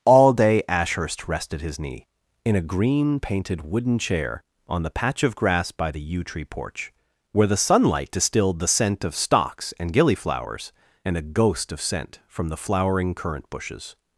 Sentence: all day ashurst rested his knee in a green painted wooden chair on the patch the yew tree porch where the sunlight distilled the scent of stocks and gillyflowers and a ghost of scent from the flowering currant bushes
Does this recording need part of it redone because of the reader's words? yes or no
yes